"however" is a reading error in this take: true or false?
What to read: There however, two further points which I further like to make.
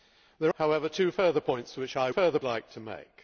false